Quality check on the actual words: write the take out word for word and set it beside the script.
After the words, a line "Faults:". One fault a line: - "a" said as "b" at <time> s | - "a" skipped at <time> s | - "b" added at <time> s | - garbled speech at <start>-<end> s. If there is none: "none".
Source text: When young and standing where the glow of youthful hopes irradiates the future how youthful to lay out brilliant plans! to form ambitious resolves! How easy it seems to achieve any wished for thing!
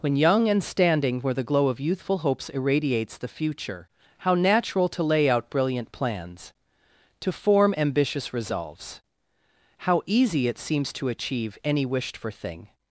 When young and standing where the glow of youthful hopes irradiates the future how natural to lay out brilliant plans! to form ambitious resolves! How easy it seems to achieve any wished for thing!
Faults:
- "youthful" said as "natural" at 4.3 s